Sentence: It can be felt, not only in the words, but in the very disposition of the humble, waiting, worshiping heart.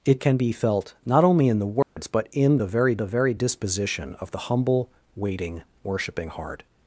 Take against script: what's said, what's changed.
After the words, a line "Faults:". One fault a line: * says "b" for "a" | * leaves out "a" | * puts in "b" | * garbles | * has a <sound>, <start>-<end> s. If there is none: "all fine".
It can be felt, not only in the words, but in the very the very disposition of the humble, waiting, worshiping heart.
Faults:
* has a dropout, 1.8-2.0 s
* puts in "the very"